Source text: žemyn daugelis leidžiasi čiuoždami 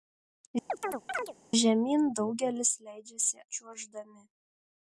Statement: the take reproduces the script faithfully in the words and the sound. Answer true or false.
false